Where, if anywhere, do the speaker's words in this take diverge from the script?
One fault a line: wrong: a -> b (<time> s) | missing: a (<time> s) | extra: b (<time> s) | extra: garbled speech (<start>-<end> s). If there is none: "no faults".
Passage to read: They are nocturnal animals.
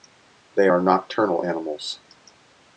no faults